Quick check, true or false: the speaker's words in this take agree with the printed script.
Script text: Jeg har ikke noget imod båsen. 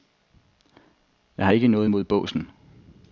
true